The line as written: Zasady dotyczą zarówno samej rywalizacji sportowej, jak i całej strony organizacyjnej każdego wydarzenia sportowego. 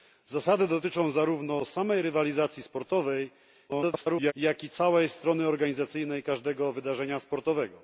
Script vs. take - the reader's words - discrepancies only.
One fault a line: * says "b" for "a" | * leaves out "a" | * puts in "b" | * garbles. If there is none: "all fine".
* garbles